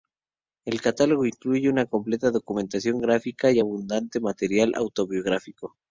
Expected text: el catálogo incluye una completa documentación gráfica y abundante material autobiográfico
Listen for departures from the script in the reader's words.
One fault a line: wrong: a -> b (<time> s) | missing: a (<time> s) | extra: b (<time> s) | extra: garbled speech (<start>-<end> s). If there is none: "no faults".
no faults